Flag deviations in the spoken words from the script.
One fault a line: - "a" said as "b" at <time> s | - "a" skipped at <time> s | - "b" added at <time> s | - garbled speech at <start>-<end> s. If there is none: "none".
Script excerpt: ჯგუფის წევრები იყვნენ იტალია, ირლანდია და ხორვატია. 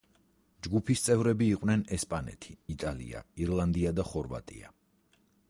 - "ესპანეთი" added at 2.0 s